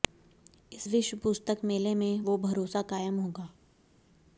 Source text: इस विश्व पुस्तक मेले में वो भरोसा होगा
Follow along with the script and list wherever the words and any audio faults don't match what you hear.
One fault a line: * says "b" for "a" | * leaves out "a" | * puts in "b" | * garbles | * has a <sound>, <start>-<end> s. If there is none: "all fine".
* puts in "कायम"